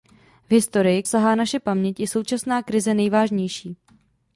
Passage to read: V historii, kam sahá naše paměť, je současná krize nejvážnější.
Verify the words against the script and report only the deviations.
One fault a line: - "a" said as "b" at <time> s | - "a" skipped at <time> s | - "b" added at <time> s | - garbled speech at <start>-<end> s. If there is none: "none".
- "kam" skipped at 1.0 s